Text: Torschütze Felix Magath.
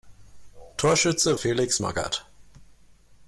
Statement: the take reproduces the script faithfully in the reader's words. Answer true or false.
true